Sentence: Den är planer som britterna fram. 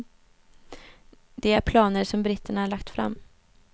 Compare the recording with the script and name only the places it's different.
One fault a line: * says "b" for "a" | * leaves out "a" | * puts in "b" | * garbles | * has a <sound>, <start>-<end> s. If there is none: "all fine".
* says "Det" for "Den"
* puts in "lagt"